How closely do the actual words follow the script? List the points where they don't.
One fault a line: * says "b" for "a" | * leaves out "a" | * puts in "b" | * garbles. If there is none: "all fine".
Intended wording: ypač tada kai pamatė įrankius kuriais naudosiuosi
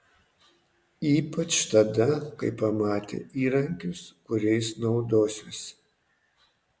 all fine